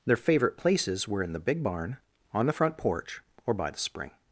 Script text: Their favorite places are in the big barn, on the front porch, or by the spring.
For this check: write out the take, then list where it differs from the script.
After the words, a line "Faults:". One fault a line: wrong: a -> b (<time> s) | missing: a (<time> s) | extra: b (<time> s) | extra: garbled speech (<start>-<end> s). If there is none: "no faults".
Their favorite places were in the big barn, on the front porch, or by the spring.
Faults:
wrong: are -> were (1.1 s)